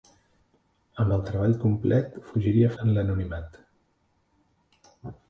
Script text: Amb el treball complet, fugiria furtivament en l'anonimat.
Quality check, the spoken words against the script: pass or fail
fail